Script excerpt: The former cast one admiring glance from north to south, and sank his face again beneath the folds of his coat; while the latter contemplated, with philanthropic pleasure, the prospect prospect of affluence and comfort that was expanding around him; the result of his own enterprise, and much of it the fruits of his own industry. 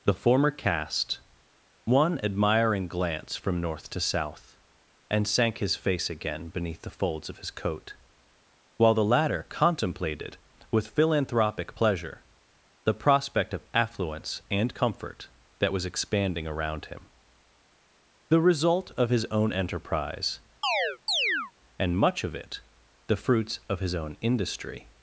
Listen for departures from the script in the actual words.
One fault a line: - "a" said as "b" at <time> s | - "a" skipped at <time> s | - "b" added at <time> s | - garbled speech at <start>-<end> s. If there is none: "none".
- "prospect" skipped at 13.5 s